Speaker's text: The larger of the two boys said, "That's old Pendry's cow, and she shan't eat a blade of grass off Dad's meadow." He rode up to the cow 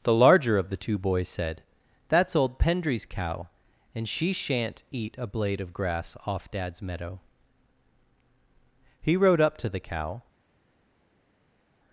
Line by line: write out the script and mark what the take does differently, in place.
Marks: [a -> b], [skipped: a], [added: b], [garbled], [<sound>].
The larger of the two boys said, "That's old Pendry's cow, and she shan't eat a blade of grass off Dad's meadow." He rode up to the cow